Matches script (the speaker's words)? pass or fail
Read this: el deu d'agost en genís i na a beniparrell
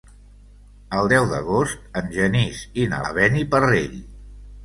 pass